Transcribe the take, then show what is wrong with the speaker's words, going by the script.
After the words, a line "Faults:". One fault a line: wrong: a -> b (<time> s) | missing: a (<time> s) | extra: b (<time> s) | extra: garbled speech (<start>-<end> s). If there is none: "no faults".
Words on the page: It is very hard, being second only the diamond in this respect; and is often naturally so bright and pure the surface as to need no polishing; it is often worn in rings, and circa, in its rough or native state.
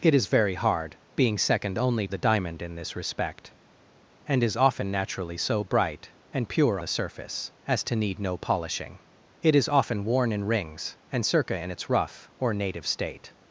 It is very hard, being second only the diamond in this respect; and is often naturally so bright and pure the surface as to need no polishing; it is often worn in rings, and circa, in its rough or native state.
Faults:
no faults